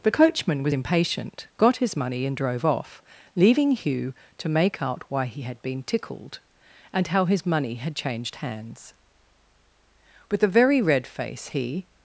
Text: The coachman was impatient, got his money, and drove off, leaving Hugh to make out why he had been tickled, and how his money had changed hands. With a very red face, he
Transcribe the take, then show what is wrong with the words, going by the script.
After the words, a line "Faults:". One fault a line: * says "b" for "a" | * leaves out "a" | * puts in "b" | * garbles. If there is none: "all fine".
The coachman was impatient, got his money, and drove off, leaving Hugh to make out why he had been tickled, and how his money had changed hands. With a very red face, he
Faults:
all fine